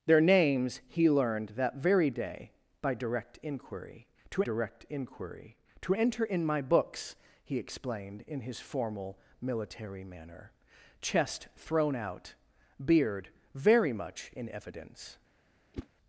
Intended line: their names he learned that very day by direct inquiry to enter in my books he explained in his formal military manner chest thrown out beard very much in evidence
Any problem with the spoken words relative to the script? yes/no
yes